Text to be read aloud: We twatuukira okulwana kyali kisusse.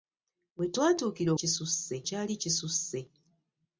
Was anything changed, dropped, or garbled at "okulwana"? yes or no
yes